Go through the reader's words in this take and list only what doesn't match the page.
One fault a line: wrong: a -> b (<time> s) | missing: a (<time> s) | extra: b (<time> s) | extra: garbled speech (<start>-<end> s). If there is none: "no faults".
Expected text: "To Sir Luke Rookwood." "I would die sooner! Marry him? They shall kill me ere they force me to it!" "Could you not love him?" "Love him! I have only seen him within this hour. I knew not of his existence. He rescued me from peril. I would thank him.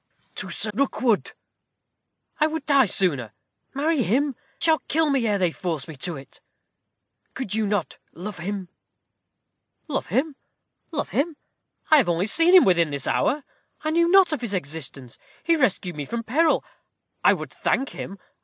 missing: Luke (0.7 s)
missing: They (4.3 s)
extra: love him (10.9 s)